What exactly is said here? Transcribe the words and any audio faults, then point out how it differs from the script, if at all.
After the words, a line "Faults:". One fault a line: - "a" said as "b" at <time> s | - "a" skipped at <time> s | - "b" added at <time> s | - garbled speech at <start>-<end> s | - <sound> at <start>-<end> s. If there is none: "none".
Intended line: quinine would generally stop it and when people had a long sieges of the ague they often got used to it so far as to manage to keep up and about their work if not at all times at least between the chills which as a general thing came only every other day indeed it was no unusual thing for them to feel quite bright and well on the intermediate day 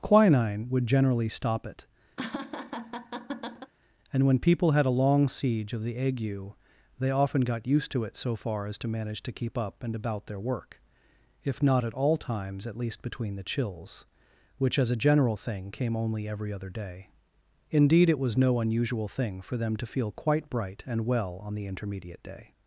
quinine would generally stop it and when people had a long siege of the ague they often got used to it so far as to manage to keep up and about their work if not at all times at least between the chills which as a general thing came only every other day indeed it was no unusual thing for them to feel quite bright and well on the intermediate day
Faults:
- laugh at 2.2-3.7 s
- "sieges" said as "siege" at 5.3 s